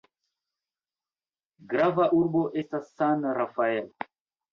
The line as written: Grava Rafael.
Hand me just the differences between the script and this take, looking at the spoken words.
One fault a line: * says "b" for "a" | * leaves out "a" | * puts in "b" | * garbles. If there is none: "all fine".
* puts in "urbo estas San"